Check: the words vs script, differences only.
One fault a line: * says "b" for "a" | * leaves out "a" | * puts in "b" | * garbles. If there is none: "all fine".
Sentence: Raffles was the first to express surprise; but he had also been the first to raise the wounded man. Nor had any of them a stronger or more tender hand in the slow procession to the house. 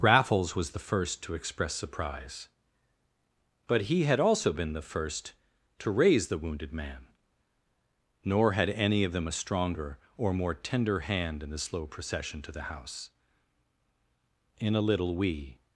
* puts in "In a little we"